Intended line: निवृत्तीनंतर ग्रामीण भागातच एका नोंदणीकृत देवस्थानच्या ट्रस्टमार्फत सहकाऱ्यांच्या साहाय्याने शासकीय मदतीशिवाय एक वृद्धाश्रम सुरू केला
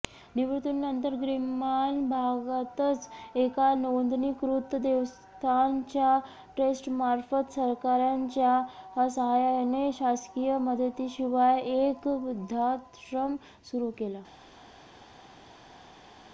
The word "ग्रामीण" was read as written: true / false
true